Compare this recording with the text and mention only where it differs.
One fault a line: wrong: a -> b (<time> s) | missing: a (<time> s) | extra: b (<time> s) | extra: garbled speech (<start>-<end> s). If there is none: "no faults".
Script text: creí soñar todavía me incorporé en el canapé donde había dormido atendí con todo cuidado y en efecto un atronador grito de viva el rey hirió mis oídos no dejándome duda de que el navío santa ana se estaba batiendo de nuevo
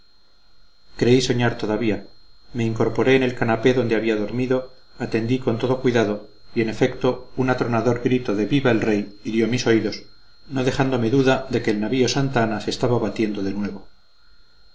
no faults